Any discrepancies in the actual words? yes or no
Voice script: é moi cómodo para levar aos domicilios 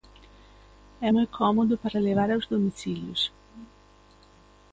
no